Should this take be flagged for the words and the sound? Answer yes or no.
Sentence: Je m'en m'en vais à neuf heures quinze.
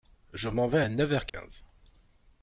yes